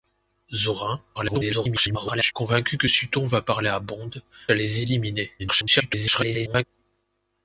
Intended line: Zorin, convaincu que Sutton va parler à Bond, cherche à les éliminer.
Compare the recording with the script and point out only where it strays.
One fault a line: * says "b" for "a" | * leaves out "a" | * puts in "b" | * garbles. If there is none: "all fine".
* garbles
* leaves out "cherche"
* garbles